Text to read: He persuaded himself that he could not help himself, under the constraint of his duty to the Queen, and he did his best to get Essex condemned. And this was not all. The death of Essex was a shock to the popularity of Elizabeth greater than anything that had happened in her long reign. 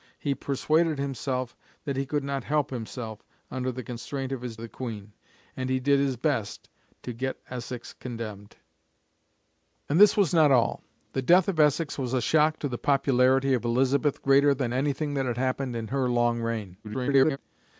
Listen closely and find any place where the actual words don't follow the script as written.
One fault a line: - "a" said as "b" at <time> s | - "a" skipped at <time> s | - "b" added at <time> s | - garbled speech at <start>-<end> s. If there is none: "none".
- "duty to" skipped at 4.6 s
- garbled speech at 16.8-17.4 s